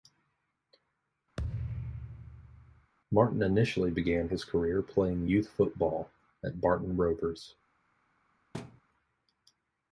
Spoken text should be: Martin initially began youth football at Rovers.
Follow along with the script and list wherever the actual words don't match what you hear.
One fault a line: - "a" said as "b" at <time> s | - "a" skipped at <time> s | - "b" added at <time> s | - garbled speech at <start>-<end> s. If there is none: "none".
- "his career playing" added at 4.3 s
- "Barton" added at 6.6 s